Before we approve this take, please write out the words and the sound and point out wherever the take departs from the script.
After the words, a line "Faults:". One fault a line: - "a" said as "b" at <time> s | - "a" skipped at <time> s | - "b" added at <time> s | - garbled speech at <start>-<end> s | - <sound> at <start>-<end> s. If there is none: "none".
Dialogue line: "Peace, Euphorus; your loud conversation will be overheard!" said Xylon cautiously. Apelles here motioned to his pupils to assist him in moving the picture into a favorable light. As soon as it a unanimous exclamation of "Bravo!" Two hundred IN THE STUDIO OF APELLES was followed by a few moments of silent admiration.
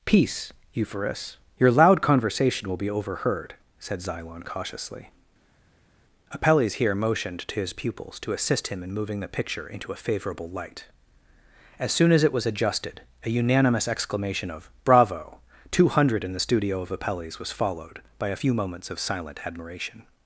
"Peace, Euphorus; your loud conversation will be overheard!" said Xylon cautiously. Apelles here motioned to his pupils to assist him in moving the picture into a favorable light. As soon as it was adjusted, a unanimous exclamation of "Bravo!" Two hundred IN THE STUDIO OF APELLES was followed by a few moments of silent admiration.
Faults:
- "was adjusted" added at 12.3 s